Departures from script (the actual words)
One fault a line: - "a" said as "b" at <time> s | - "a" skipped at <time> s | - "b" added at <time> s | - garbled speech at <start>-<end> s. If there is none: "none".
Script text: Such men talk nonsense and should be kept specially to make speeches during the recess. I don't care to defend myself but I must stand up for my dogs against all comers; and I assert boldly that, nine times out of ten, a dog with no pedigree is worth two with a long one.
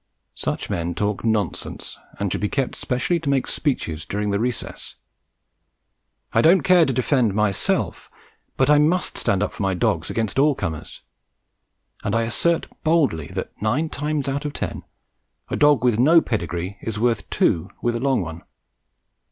none